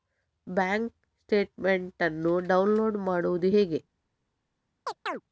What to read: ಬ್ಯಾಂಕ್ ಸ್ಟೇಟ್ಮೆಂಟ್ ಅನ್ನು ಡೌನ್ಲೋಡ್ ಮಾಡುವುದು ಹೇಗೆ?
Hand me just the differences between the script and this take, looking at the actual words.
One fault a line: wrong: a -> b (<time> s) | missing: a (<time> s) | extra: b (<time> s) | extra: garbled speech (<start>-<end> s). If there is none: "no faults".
no faults